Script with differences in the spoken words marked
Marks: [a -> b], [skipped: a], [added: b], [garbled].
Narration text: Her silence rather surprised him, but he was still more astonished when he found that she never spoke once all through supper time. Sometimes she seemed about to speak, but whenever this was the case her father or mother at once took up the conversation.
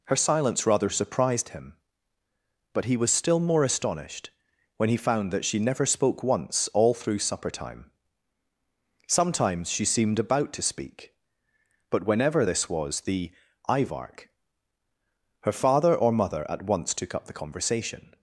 Her silence rather surprised him, but he was still more astonished when he found that she never spoke once all through supper time. Sometimes she seemed about to speak, but whenever this was the [case -> ivark] her father or mother at once took up the conversation.